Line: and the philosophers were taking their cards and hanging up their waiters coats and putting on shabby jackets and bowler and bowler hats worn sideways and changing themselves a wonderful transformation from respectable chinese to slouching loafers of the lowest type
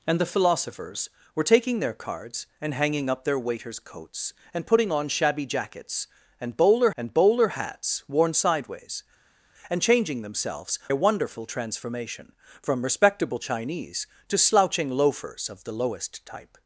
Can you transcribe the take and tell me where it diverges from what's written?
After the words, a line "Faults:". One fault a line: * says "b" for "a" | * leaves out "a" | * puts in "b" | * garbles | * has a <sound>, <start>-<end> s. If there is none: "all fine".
and the philosophers were taking their cards and hanging up their waiters coats and putting on shabby jackets and bowler and bowler hats worn sideways and changing themselves a wonderful transformation from respectable chinese to slouching loafers of the lowest type
Faults:
all fine